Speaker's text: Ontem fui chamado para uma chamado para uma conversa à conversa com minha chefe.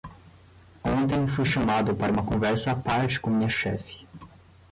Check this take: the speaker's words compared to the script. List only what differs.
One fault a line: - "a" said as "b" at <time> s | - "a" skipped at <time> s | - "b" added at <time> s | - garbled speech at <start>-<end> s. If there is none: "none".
- "chamado para uma" skipped at 2.3 s
- "conversa" said as "parte" at 2.8 s